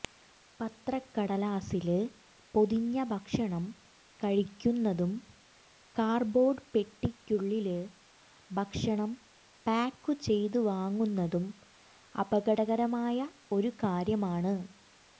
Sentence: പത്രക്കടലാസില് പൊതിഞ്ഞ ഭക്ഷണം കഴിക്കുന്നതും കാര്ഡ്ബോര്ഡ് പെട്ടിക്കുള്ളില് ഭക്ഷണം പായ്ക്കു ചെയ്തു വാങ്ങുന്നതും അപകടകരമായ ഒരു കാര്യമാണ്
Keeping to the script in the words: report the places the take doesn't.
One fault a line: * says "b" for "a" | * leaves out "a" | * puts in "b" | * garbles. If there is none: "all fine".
all fine